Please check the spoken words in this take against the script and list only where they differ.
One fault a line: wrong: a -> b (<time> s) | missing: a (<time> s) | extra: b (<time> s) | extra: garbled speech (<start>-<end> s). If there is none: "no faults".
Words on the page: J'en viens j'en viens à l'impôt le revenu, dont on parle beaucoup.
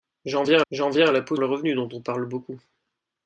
no faults